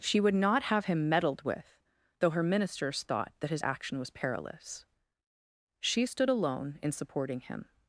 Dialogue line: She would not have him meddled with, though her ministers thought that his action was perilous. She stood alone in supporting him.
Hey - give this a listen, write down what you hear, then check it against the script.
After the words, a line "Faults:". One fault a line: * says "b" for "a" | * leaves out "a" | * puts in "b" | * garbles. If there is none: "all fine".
She would not have him meddled with, though her ministers thought that his action was perilous. She stood alone in supporting him.
Faults:
all fine